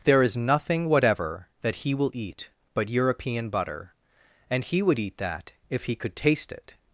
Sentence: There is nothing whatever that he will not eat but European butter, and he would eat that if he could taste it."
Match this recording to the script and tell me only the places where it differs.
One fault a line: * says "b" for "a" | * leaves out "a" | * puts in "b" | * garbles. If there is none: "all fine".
* leaves out "not"